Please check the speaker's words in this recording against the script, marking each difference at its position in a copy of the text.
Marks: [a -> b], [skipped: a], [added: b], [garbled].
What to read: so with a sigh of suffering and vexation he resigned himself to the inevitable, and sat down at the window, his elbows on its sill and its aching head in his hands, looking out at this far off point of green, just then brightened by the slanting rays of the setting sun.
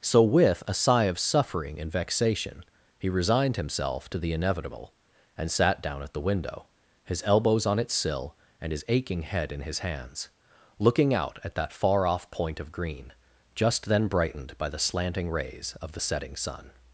so with a sigh of suffering and vexation he resigned himself to the inevitable, and sat down at the window, his elbows on its sill and [its -> his] aching head in his hands, looking out at [this -> that] far off point of green, just then brightened by the slanting rays of the setting sun.